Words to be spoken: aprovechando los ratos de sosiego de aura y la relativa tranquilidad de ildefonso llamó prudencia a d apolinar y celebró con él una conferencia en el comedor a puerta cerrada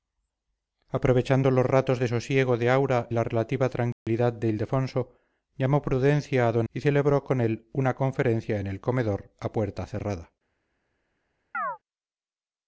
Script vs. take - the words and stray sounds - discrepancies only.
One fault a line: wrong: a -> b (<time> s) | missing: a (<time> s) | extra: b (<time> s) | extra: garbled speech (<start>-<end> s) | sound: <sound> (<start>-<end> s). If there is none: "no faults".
missing: y (3.1 s)
sound: dropout (3.9-4.1 s)
missing: apolinar (6.6 s)
sound: chirp (11.5-11.8 s)